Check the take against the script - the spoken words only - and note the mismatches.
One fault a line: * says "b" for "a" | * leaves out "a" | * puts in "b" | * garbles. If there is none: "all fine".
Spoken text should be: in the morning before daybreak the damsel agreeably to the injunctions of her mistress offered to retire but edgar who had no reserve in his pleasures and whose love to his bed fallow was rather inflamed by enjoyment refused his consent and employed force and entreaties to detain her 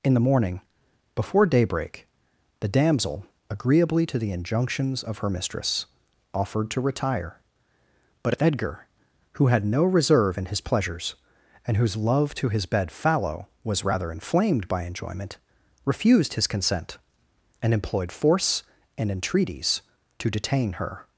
all fine